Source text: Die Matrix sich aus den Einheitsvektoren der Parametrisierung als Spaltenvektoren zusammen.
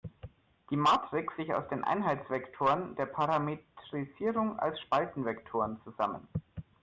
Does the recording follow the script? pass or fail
pass